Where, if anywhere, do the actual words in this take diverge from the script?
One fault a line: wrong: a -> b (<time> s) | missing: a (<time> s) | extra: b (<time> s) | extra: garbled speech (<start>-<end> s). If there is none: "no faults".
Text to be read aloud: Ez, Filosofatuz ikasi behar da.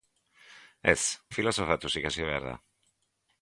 no faults